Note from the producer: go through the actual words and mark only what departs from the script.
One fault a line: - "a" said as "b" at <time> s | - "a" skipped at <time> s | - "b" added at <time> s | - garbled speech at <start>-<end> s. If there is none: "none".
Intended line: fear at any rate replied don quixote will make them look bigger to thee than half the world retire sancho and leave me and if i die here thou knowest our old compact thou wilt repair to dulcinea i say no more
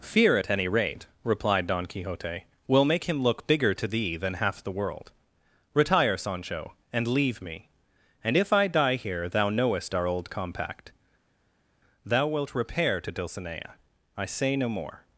- "them" said as "him" at 3.1 s